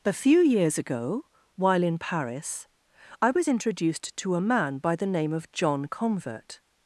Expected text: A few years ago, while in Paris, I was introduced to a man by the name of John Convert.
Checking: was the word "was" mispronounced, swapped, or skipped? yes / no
no